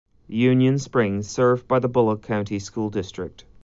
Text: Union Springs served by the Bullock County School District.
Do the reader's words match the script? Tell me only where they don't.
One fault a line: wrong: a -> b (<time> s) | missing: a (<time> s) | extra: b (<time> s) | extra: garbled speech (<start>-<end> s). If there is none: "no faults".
no faults